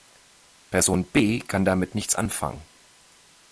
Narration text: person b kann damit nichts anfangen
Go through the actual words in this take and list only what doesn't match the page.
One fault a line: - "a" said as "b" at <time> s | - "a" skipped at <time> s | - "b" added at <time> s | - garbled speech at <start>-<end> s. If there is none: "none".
none